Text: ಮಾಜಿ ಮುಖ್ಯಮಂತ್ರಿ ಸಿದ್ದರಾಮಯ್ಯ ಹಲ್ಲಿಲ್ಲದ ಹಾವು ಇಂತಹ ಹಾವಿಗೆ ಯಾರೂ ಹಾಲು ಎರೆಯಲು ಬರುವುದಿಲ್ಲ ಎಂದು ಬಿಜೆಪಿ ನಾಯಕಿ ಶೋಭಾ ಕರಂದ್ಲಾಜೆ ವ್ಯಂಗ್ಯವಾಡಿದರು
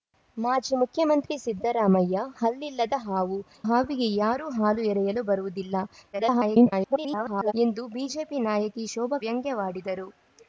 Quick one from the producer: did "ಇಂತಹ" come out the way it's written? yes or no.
no